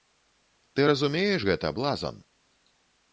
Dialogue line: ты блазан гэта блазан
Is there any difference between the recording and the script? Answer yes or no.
yes